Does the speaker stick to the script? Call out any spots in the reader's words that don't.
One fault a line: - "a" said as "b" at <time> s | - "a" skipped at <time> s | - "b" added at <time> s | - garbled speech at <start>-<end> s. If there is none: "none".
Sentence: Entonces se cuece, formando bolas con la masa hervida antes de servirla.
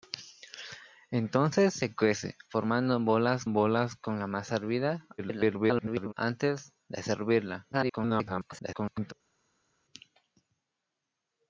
- "bolas" added at 3.5 s
- garbled speech at 5.2-6.1 s
- garbled speech at 7.7-9.1 s